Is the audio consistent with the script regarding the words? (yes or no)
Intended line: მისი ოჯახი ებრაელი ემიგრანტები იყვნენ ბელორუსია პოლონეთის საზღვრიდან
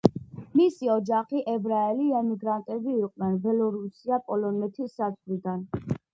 yes